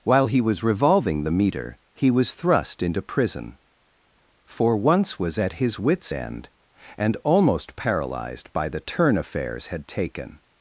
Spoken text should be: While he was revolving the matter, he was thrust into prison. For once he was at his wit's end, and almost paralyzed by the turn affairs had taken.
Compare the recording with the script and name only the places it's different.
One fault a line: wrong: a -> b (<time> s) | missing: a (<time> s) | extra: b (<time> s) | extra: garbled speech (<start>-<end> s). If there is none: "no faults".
wrong: matter -> meter (1.3 s)
missing: he (5.2 s)